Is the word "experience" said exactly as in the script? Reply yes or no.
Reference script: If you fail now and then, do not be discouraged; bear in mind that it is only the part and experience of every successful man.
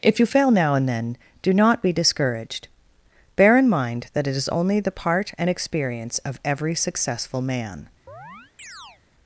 yes